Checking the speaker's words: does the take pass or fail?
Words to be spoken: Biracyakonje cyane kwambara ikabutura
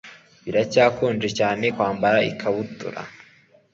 pass